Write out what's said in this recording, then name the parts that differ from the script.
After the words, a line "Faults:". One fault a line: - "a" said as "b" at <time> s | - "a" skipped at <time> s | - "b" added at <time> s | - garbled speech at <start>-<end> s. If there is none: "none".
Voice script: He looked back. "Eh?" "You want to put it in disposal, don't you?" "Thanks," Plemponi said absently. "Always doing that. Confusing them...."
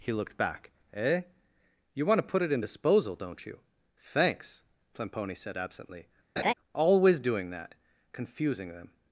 He looked back. "Eh?" "You want to put it in disposal, don't you?" "Thanks," Plemponi said absently. "Always doing that. Confusing them...."
Faults:
none